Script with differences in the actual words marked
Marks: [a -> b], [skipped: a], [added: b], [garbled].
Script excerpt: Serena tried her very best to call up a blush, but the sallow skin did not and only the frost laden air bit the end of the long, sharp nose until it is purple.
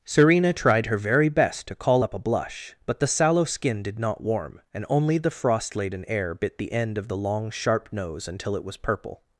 Serena tried her very best to call up a blush, but the sallow skin did not [added: warm] and only the frost laden air bit the end of the long, sharp nose until it [is -> was] purple.